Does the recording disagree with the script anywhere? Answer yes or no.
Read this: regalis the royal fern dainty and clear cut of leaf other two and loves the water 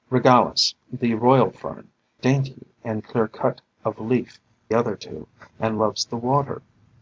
no